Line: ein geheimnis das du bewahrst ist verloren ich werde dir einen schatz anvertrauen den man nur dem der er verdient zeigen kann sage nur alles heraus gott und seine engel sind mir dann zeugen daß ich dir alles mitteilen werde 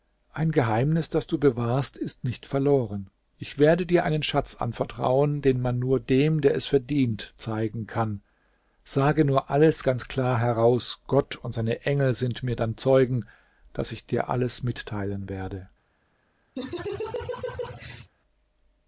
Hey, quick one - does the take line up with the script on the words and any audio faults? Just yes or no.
no